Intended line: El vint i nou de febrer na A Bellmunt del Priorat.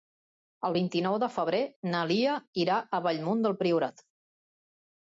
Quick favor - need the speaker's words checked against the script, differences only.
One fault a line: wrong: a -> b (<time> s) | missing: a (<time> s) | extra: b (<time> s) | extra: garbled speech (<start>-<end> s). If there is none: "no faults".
extra: Lia irà (2.1 s)